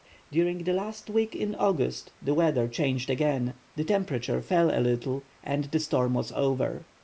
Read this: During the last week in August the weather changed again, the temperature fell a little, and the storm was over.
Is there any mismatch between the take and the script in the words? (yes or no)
no